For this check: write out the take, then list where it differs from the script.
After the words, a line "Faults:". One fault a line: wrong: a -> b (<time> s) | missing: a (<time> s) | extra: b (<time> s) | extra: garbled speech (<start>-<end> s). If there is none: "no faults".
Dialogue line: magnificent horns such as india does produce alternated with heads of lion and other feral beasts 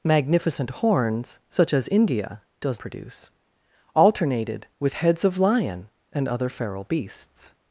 magnificent horns such as india does produce alternated with heads of lion and other feral beasts
Faults:
no faults